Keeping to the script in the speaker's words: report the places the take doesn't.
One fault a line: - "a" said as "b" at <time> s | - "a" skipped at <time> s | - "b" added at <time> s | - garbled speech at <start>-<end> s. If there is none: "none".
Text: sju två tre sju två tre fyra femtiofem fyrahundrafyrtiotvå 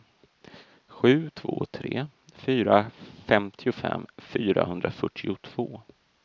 - "sju två tre" skipped at 2.1 s